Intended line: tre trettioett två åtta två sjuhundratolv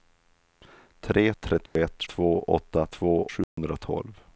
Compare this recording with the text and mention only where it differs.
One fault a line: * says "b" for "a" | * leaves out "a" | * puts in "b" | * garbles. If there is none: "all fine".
all fine